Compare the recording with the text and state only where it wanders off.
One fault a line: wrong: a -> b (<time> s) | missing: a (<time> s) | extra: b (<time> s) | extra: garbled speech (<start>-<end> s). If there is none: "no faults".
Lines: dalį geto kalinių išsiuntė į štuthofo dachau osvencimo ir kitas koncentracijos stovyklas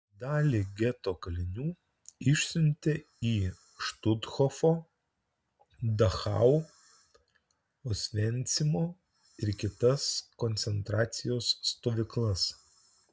no faults